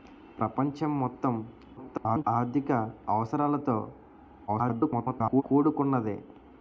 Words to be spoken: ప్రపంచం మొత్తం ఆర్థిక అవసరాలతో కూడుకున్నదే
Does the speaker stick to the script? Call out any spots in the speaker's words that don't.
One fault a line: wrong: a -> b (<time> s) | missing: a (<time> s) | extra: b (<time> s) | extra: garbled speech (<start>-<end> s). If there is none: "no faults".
extra: garbled speech (1.8-2.2 s)
extra: garbled speech (4.5-5.4 s)